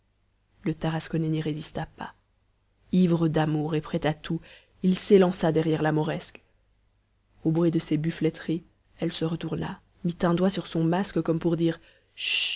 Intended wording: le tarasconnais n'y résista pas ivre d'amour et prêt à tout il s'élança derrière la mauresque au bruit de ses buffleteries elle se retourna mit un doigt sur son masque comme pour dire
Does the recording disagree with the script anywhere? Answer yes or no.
no